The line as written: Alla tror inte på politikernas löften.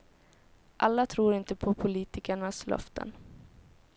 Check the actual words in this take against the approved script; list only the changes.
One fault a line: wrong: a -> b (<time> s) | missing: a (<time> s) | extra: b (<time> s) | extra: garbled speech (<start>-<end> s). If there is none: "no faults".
no faults